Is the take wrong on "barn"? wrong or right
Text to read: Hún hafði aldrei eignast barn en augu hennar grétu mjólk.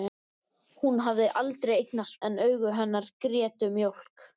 wrong